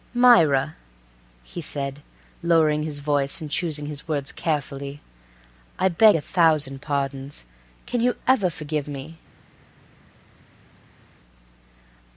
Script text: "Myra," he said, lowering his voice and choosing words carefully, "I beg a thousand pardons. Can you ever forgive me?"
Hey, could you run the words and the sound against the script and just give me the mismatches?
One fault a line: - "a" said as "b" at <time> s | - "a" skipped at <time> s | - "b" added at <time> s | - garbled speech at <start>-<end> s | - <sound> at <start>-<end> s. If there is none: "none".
- "his" added at 3.9 s